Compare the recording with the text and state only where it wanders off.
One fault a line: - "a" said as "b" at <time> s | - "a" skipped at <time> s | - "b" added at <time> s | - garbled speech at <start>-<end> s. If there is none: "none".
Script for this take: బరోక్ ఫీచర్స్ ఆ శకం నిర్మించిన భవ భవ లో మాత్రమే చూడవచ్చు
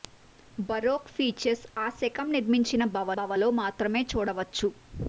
none